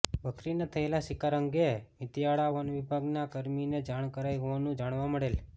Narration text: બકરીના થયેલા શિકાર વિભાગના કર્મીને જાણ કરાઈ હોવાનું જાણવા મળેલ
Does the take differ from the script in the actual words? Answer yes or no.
yes